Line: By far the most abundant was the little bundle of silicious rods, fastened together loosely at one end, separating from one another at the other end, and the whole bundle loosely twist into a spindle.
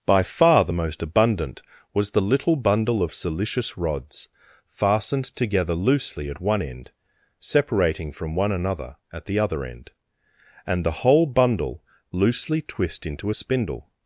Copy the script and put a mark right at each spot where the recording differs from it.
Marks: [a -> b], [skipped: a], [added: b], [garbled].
By far the most abundant was the little bundle of silicious rods, fastened together loosely at one end, separating from one another at the other end, and the whole bundle loosely twist into a spindle.